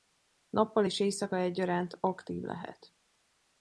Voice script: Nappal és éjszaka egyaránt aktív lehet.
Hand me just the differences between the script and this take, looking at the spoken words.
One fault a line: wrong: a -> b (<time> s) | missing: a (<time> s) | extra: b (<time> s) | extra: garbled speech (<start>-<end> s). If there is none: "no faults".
no faults